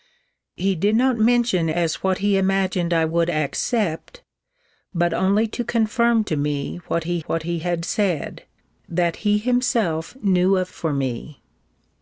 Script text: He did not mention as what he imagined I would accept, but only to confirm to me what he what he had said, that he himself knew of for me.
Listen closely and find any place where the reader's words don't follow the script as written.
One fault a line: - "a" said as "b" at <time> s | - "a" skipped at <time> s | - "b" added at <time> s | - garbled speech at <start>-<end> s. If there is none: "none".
none